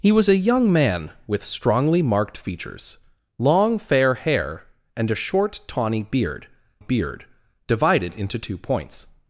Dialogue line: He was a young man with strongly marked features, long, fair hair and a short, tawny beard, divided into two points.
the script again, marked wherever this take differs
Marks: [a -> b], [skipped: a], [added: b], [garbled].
He was a young man with strongly marked features, long, fair hair and a short, tawny beard, [added: beard] divided into two points.